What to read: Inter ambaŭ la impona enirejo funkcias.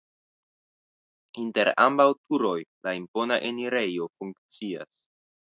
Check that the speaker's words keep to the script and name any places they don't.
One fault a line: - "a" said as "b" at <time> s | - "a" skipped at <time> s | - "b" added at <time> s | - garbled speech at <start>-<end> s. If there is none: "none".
- "turoj" added at 2.2 s